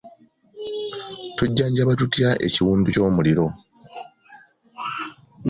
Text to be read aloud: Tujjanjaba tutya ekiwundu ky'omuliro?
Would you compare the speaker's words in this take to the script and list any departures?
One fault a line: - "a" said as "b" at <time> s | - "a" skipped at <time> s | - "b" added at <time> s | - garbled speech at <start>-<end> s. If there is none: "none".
none